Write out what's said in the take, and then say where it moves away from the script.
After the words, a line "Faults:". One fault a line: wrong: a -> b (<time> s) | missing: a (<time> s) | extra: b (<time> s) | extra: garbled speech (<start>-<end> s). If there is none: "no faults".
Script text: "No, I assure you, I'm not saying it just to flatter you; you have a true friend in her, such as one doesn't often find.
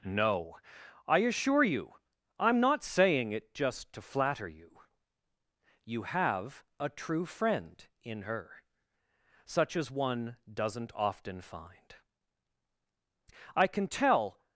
"No, I assure you, I'm not saying it just to flatter you; you have a true friend in her, such as one doesn't often find. I can tell
Faults:
extra: I can tell (13.6 s)